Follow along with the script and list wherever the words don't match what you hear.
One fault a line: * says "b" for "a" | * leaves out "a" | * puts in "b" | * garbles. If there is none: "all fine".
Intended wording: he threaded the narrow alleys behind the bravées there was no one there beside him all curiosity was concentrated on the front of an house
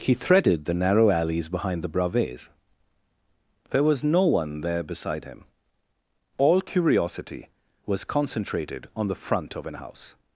all fine